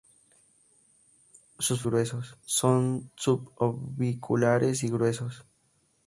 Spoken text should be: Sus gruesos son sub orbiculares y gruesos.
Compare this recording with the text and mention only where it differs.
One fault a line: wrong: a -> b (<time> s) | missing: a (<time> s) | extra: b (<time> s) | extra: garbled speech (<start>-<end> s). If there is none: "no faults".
no faults